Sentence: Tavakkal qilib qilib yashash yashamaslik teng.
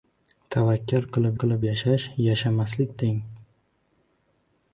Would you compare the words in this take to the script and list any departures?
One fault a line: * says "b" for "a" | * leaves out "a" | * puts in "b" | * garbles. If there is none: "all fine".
all fine